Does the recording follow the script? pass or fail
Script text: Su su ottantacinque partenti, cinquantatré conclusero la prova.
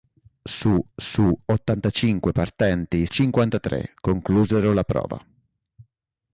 pass